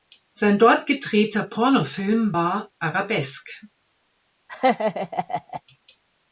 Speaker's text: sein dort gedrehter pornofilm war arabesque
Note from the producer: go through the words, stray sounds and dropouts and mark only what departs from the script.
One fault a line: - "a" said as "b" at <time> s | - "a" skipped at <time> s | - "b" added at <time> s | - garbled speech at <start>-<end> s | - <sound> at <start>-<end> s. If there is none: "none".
- laugh at 4.5-5.6 s